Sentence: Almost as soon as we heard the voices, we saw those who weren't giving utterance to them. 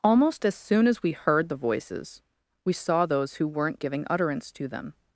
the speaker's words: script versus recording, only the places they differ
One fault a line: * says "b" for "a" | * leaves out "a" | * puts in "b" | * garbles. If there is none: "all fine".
all fine